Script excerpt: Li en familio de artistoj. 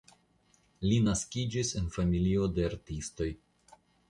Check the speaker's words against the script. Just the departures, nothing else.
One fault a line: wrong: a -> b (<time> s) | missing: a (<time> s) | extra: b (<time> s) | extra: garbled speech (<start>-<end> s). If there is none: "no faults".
extra: naskiĝis (1.1 s)